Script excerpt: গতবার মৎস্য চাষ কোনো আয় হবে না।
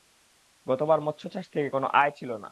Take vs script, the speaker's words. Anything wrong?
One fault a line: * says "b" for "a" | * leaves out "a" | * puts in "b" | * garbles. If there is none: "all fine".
* puts in "থেকে"
* says "ছিল" for "হবে"